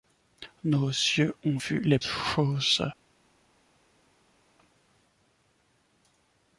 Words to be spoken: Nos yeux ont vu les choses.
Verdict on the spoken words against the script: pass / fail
pass